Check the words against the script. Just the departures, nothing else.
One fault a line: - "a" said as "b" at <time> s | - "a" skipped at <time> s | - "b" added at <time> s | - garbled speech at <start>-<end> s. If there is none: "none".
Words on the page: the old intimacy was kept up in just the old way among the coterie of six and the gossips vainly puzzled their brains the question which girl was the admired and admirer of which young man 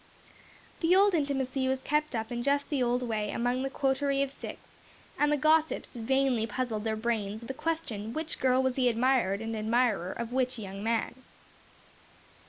none